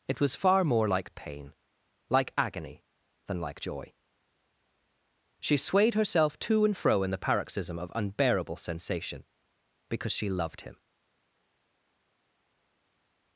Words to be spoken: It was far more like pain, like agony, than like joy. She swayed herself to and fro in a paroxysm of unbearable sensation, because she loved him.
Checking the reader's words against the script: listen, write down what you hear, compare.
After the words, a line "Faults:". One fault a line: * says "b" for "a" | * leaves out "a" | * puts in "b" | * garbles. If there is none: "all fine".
It was far more like pain, like agony, than like joy. She swayed herself to and fro in the paroxysm of unbearable sensation, because she loved him.
Faults:
* says "the" for "a"